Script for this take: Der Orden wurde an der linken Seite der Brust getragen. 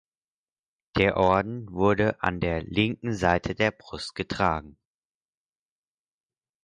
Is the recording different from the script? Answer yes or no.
no